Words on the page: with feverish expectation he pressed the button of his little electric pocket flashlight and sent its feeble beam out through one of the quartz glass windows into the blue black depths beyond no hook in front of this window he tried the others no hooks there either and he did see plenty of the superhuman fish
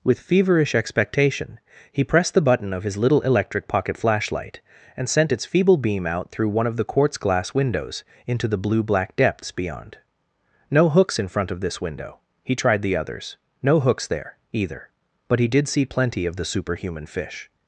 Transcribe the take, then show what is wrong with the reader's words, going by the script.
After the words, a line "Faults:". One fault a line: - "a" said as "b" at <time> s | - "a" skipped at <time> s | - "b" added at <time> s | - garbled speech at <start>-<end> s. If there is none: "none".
with feverish expectation he pressed the button of his little electric pocket flashlight and sent its feeble beam out through one of the quartz glass windows into the blue black depths beyond no hooks in front of this window he tried the others no hooks there either but he did see plenty of the superhuman fish
Faults:
- "hook" said as "hooks" at 10.9 s
- "and" said as "but" at 15.3 s